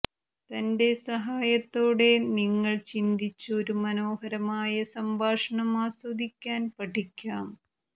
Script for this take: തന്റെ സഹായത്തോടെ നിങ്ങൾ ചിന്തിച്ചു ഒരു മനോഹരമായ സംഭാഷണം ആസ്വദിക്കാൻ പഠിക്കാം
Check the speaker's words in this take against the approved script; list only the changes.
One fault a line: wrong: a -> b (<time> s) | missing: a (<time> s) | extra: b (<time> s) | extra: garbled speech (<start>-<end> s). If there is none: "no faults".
no faults